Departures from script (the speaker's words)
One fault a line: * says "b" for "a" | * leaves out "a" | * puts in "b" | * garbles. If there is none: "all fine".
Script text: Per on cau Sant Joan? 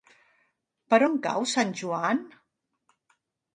all fine